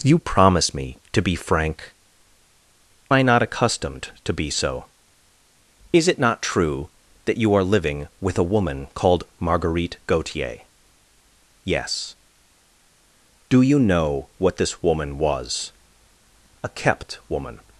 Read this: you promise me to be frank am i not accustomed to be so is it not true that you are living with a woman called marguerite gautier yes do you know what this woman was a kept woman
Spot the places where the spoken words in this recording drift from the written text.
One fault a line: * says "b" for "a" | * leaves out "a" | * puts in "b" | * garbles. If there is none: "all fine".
* leaves out "am"